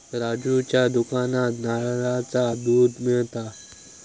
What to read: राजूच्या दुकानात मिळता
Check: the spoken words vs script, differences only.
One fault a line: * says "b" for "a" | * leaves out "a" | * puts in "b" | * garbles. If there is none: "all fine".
* puts in "नारळाचा दुध"